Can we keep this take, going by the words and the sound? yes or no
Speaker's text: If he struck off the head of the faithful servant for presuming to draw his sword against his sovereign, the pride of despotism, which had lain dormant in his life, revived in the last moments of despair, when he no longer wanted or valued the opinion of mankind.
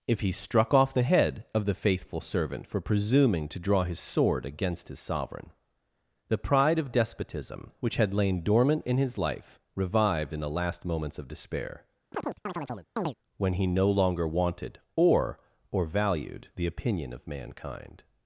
no